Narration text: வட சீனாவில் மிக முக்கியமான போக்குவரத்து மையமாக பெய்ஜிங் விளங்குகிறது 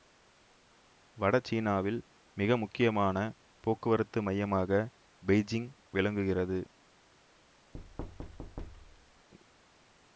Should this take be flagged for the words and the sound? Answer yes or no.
yes